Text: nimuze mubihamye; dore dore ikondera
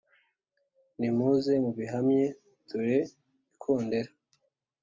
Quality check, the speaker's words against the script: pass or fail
fail